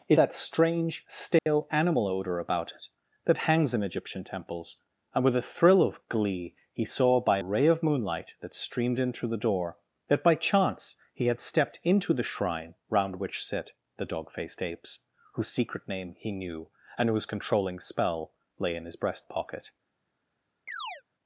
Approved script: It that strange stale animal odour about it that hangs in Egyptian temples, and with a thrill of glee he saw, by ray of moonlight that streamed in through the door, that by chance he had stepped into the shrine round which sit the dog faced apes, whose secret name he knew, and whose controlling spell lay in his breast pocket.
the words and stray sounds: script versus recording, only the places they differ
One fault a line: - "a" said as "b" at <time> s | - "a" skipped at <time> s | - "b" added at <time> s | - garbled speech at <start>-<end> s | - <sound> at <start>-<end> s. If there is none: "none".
- dropout at 1.4-1.5 s
- chirp at 20.7-21.0 s